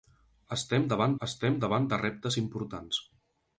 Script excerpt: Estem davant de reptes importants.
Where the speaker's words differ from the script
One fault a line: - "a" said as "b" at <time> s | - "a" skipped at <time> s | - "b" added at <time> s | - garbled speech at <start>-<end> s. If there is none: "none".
- "estem davant" added at 1.3 s